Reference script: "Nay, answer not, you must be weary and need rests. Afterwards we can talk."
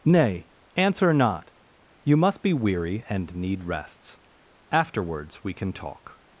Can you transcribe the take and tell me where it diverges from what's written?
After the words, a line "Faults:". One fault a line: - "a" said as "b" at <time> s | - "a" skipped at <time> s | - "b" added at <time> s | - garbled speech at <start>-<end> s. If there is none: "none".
"Nay, answer not, you must be weary and need rests. Afterwards we can talk."
Faults:
none